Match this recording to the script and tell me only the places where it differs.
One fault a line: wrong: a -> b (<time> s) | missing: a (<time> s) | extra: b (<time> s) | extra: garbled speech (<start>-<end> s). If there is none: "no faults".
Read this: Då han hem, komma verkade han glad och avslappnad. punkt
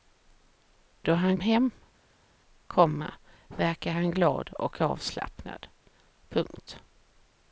no faults